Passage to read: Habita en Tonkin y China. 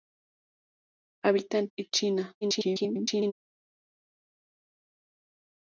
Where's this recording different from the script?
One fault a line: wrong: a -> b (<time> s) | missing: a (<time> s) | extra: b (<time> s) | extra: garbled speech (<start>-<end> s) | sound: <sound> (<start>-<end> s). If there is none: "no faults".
missing: Tonkin (1.7 s)
extra: garbled speech (2.4-3.3 s)